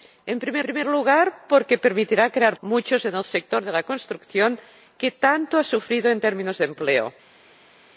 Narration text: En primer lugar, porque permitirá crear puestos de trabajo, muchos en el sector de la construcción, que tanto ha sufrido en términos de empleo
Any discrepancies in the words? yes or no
yes